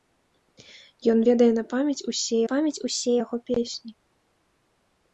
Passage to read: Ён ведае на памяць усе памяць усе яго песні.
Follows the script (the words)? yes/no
yes